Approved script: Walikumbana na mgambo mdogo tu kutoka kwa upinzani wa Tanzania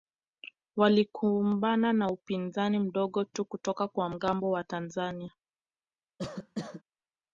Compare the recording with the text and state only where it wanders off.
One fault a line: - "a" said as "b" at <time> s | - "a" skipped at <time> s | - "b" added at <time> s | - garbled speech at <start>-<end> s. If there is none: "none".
- "mgambo" said as "upinzani" at 2.1 s
- "upinzani" said as "mgambo" at 4.1 s